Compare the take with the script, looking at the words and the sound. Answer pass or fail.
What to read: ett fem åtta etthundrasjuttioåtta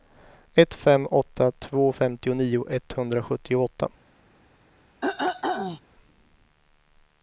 fail